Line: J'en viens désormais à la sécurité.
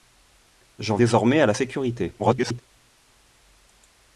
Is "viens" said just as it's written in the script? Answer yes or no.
no